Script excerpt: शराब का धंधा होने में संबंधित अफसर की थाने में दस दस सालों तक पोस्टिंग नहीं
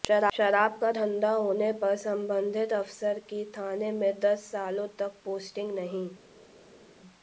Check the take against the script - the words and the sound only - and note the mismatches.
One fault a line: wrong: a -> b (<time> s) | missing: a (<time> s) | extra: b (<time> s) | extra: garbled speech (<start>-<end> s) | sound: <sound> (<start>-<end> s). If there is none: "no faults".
wrong: में -> पर (1.7 s)
missing: दस (4.4 s)